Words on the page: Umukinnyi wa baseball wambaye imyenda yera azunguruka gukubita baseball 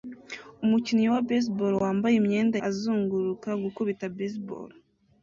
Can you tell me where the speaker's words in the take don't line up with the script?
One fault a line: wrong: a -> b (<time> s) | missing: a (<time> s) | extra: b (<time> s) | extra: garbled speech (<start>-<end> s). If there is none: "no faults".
missing: yera (2.6 s)